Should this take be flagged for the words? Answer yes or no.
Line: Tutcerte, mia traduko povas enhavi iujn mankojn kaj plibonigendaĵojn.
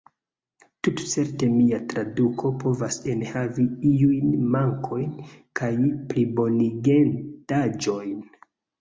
no